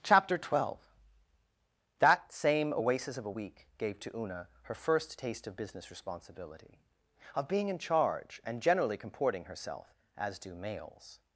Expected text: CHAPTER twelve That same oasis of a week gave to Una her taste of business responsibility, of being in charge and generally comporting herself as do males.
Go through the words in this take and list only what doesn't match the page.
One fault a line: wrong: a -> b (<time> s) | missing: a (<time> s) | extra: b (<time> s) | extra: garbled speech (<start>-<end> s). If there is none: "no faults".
extra: first (4.7 s)